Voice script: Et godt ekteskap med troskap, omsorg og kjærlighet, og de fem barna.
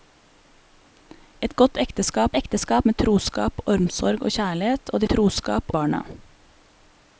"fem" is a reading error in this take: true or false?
true